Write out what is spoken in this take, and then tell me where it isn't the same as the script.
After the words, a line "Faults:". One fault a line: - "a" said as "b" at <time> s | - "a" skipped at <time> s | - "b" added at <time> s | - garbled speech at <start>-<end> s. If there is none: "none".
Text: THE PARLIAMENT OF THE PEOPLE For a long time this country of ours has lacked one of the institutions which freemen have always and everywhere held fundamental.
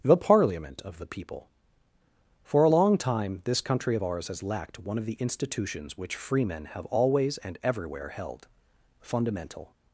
THE PARLIAMENT OF THE PEOPLE For a long time this country of ours has lacked one of the institutions which freemen have always and everywhere held fundamental.
Faults:
none